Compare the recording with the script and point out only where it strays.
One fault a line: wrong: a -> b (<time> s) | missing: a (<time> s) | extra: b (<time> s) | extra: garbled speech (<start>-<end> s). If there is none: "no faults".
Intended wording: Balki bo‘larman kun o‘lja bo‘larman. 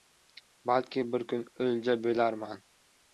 wrong: bo‘larman -> bir (1.1 s)